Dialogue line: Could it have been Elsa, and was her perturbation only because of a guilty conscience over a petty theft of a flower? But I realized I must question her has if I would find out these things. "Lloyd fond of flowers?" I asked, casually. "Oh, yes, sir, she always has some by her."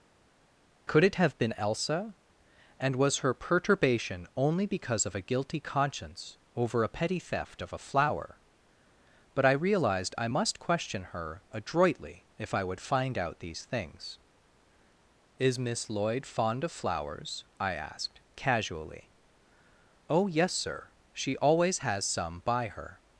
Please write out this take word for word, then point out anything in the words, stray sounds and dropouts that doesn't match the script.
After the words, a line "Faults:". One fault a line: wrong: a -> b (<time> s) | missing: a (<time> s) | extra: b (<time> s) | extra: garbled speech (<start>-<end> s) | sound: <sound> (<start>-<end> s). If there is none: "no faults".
Could it have been Elsa, and was her perturbation only because of a guilty conscience over a petty theft of a flower? But I realized I must question her adroitly if I would find out these things. "Is Miss Lloyd fond of flowers?" I asked, casually. "Oh, yes, sir, she always has some by her."
Faults:
wrong: has -> adroitly (11.5 s)
extra: Is Miss (15.4 s)